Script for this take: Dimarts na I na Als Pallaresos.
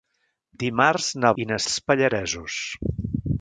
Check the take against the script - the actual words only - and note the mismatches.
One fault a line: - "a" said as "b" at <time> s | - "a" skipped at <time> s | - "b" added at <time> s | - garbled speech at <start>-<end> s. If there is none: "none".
none